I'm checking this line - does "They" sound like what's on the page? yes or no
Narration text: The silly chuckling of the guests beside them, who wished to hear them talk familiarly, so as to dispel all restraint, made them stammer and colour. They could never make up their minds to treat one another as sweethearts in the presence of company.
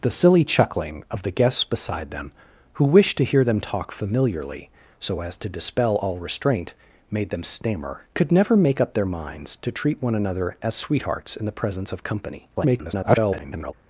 no